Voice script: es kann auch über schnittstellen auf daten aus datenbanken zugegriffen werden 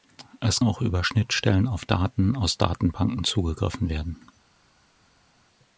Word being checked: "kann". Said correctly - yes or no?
no